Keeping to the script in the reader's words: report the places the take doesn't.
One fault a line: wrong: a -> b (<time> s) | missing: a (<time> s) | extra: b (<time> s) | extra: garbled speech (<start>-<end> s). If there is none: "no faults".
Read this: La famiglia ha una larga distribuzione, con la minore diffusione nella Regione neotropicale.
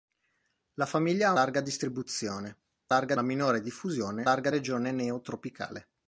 missing: una (1.3 s)
wrong: con -> larga (2.9 s)
wrong: nella -> larga (4.2 s)